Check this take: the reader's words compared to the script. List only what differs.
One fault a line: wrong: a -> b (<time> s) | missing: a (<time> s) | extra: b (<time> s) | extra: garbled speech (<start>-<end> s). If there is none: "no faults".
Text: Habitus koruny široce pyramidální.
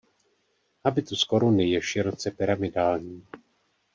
extra: je (1.7 s)